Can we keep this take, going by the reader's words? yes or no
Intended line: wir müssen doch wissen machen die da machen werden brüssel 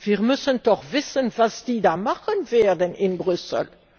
no